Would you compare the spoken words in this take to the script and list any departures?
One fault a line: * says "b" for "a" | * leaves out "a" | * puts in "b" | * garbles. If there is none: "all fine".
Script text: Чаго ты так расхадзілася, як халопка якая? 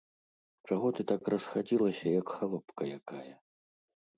all fine